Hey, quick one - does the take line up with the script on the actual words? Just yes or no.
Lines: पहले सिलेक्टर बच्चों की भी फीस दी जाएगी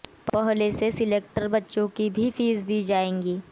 no